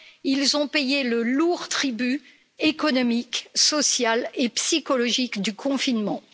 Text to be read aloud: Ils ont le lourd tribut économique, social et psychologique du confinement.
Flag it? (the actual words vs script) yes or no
yes